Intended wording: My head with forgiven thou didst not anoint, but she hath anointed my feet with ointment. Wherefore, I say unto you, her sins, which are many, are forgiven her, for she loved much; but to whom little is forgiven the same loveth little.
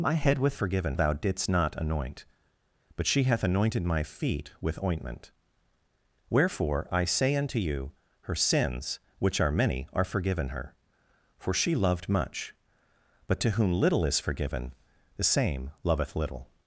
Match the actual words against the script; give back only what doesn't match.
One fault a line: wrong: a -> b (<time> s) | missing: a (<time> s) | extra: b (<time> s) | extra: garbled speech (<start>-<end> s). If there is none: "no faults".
no faults